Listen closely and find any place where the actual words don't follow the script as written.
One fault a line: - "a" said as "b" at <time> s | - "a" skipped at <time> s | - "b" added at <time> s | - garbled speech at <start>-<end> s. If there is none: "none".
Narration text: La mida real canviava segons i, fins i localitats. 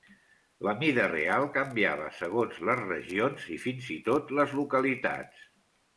- "les regions" added at 2.7 s
- "tot les" added at 4.1 s